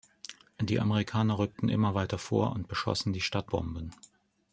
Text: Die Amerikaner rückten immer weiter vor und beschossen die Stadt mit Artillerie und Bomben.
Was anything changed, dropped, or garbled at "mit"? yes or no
yes